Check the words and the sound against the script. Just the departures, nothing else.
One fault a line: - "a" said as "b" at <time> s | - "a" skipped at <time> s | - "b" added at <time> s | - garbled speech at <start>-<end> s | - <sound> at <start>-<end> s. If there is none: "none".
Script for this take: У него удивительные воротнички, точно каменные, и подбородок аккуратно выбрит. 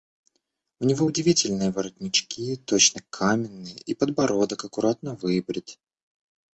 none